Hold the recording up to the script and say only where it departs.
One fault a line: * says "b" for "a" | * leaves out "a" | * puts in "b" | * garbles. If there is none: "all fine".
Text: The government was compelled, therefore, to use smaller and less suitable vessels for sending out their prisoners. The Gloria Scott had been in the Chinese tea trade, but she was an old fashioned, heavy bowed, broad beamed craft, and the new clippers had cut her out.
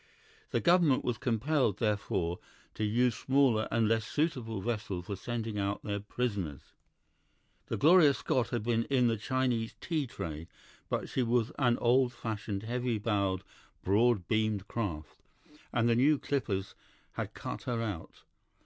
all fine